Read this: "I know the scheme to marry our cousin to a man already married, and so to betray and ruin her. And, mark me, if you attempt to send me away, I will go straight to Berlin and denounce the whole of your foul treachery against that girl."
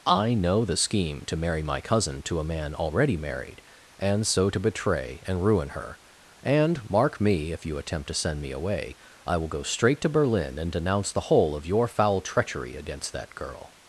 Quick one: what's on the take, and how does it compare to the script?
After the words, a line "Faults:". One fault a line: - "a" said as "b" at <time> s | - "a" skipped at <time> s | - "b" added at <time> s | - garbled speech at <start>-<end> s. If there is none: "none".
"I know the scheme to marry my cousin to a man already married, and so to betray and ruin her. And, mark me, if you attempt to send me away, I will go straight to Berlin and denounce the whole of your foul treachery against that girl."
Faults:
- "our" said as "my" at 1.6 s